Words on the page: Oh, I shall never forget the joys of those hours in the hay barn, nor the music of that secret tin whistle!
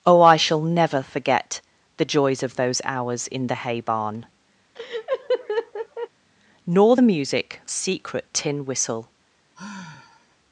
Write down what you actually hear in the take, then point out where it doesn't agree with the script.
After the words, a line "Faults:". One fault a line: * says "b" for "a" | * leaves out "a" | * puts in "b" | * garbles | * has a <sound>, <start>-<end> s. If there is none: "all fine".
Oh, I shall never forget the joys of those hours in the hay barn, nor the music secret tin whistle!
Faults:
* has a laugh, 4.8-6.1 s
* leaves out "of that"
* has a sigh, 9.5-10.4 s